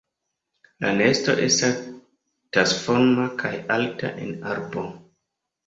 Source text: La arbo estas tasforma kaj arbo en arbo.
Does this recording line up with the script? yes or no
no